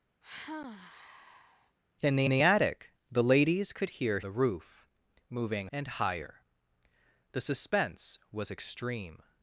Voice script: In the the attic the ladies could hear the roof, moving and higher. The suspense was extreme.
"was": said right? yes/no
yes